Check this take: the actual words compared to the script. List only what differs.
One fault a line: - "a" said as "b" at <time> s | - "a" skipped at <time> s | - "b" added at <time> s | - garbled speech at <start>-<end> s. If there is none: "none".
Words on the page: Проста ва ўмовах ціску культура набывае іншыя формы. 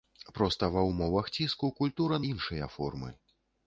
- "набывае" skipped at 2.2 s